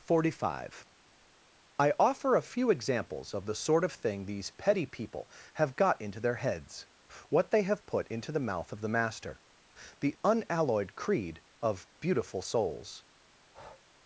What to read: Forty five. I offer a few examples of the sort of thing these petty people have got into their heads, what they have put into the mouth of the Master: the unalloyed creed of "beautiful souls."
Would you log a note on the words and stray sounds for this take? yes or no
yes